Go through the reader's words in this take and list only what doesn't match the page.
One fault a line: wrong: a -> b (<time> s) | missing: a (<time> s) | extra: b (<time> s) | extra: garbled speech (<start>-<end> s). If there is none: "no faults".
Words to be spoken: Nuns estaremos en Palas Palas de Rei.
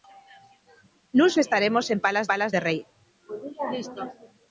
no faults